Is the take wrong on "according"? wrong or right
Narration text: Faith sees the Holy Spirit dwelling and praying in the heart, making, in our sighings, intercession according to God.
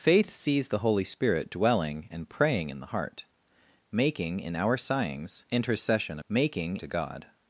wrong